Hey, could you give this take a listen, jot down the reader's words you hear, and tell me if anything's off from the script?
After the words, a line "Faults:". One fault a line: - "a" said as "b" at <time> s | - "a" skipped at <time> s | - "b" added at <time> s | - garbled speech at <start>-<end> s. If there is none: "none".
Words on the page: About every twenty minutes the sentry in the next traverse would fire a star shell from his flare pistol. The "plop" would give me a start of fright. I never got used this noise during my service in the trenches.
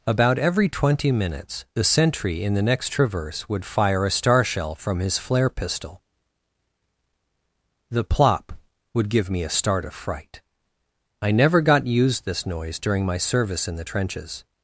About every twenty minutes the sentry in the next traverse would fire a star shell from his flare pistol. The "plop" would give me a start of fright. I never got used this noise during my service in the trenches.
Faults:
none